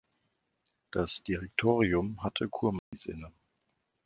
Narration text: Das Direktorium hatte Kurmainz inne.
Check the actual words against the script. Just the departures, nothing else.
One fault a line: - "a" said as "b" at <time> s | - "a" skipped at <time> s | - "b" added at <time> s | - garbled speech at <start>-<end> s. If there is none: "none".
none